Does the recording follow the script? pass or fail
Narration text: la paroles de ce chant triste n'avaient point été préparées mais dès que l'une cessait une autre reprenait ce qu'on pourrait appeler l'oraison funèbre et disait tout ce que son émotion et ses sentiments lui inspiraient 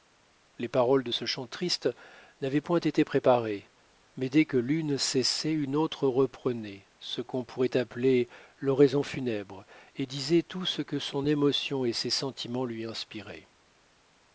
fail